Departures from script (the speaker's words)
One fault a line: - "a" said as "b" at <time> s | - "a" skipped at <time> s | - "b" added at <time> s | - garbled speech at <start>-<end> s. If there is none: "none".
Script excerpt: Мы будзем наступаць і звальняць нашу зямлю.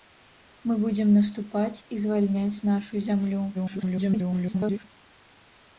- garbled speech at 3.5-4.8 s